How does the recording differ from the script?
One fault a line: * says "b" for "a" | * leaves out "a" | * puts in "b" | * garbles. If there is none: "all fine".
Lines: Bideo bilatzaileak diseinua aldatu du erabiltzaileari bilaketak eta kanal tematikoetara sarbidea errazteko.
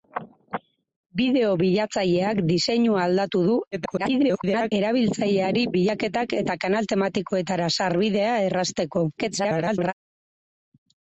* garbles
* garbles